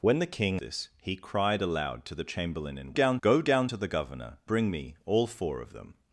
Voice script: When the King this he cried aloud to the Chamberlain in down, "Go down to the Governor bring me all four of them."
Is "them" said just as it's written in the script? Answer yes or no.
yes